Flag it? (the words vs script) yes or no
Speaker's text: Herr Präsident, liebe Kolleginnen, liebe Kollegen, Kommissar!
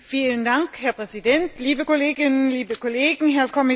yes